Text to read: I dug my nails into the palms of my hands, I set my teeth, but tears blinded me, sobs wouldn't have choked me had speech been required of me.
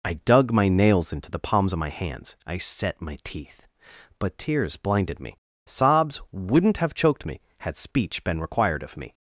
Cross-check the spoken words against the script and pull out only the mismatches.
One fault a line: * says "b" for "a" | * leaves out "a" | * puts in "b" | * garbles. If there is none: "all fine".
all fine